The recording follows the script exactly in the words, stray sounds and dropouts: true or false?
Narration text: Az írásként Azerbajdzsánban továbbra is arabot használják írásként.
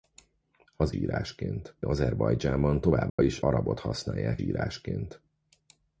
false